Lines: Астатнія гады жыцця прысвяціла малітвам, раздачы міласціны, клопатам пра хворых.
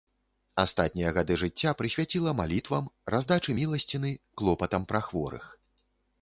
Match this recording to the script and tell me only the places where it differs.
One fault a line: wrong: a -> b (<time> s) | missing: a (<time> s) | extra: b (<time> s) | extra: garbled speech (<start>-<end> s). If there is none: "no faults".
no faults